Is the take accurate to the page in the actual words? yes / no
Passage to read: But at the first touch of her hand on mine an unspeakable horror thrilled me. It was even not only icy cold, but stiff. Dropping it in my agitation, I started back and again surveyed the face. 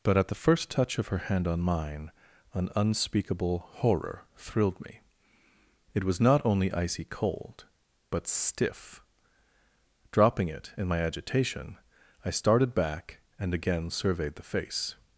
no